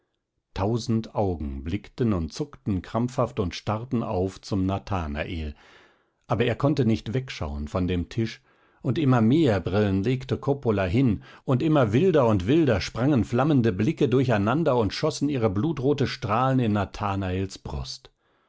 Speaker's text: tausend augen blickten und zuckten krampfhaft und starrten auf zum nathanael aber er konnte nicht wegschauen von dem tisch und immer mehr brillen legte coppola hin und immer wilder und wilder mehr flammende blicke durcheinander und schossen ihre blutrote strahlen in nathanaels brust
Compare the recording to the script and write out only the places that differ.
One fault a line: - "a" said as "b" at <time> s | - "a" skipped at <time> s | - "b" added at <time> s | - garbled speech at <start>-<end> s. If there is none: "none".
- "mehr" said as "sprangen" at 12.8 s